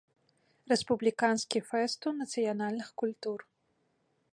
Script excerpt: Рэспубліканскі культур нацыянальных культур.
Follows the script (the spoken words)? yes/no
no